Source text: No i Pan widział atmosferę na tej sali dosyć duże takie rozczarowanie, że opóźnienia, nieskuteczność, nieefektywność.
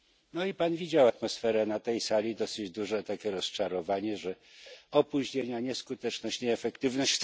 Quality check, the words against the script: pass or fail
pass